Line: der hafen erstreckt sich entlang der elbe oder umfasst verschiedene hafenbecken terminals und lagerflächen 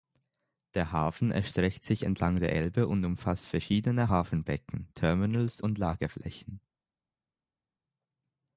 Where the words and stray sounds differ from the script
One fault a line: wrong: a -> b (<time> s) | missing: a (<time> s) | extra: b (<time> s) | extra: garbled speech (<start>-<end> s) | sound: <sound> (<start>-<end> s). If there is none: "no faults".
wrong: oder -> und (2.9 s)